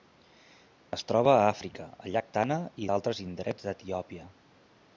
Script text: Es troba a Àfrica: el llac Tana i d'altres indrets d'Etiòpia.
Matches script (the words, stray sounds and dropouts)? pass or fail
pass